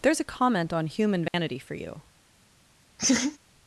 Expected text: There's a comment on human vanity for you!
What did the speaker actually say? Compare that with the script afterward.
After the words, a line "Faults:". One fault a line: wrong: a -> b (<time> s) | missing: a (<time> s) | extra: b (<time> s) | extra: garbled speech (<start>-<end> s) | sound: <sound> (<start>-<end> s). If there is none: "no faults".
There's a comment on human vanity for you!
Faults:
sound: dropout (1.3-1.3 s)
sound: laugh (3.0-3.4 s)